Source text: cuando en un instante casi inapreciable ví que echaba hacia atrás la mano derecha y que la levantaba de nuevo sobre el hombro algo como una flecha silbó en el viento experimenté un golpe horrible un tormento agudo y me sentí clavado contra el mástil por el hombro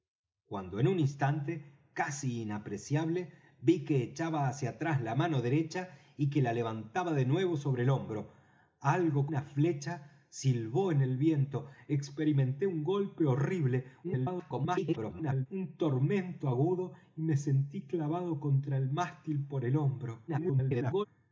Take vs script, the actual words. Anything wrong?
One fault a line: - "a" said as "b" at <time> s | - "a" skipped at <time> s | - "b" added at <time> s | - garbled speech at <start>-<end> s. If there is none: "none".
- "como" skipped at 9.3 s
- garbled speech at 14.0-15.5 s
- garbled speech at 20.3-21.1 s